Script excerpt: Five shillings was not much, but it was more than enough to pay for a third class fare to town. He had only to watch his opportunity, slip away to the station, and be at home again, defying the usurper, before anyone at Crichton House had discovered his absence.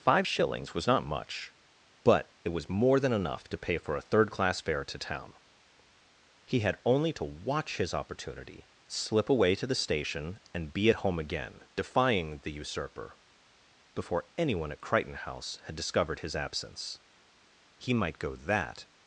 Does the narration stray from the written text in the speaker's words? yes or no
yes